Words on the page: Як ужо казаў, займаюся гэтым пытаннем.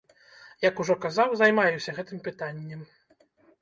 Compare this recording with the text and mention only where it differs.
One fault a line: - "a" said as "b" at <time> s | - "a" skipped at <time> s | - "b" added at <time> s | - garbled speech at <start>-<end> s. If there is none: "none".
none